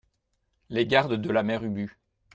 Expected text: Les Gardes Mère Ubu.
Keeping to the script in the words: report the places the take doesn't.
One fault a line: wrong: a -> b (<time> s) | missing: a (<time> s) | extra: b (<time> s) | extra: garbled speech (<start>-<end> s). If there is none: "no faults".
extra: de la (1.1 s)